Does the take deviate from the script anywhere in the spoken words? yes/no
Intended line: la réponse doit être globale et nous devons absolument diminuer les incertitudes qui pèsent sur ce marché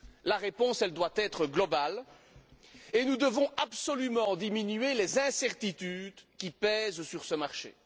no